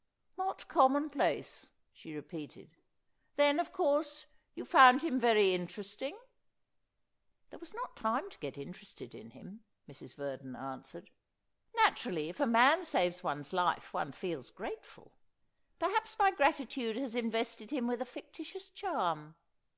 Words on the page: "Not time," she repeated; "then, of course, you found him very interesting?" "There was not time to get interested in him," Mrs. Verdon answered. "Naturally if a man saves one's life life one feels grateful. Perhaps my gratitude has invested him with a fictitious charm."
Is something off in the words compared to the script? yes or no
yes